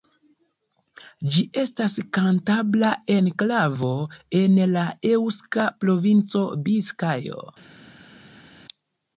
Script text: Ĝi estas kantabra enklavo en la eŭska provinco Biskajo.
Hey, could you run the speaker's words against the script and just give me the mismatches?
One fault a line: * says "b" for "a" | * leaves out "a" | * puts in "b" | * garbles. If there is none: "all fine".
all fine